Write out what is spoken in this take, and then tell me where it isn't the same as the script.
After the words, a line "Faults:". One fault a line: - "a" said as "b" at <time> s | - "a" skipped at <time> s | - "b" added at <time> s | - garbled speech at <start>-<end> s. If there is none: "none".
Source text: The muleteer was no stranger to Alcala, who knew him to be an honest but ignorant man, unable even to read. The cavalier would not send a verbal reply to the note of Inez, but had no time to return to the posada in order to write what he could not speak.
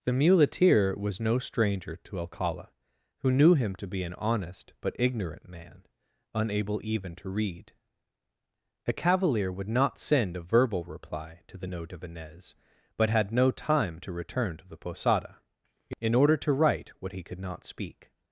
The muleteer was no stranger to Alcala, who knew him to be an honest but ignorant man, unable even to read. A cavalier would not send a verbal reply to the note of Inez, but had no time to return to the posada in order to write what he could not speak.
Faults:
- "The" said as "A" at 8.9 s